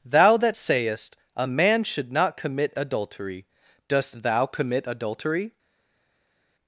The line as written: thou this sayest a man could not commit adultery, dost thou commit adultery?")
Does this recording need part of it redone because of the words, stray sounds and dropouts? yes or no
yes